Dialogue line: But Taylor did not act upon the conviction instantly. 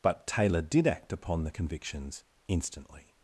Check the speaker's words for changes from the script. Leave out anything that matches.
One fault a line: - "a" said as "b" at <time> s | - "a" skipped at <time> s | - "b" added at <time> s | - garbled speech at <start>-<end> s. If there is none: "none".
- "not" skipped at 0.9 s
- "conviction" said as "convictions" at 1.5 s